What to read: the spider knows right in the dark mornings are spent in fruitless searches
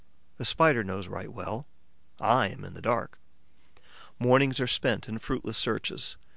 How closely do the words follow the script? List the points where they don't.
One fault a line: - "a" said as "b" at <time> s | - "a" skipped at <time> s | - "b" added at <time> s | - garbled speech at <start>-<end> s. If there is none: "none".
- "well i am" added at 1.3 s